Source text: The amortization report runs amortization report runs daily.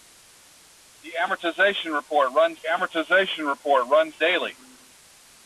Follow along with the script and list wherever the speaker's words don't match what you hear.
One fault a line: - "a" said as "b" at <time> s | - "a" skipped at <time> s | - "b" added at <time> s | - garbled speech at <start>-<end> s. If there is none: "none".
none